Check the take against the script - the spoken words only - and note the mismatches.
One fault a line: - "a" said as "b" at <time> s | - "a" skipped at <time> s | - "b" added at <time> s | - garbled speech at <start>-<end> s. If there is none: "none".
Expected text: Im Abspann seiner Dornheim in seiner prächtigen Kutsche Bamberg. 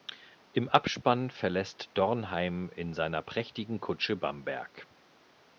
- "seiner" said as "verlässt" at 1.3 s